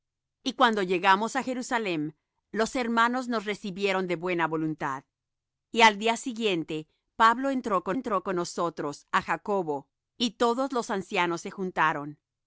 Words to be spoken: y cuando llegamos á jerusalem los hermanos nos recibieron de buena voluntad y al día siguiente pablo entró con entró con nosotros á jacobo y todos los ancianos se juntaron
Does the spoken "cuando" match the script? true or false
true